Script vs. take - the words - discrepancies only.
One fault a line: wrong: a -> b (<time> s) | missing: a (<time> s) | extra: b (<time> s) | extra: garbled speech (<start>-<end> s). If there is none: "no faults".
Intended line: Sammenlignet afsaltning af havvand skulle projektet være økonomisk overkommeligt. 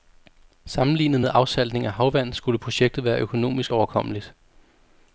extra: med (1.2 s)